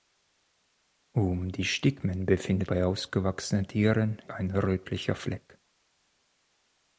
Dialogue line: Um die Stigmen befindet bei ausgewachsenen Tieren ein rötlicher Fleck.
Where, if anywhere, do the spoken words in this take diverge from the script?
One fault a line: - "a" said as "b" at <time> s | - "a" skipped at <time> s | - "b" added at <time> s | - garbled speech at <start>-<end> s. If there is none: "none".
none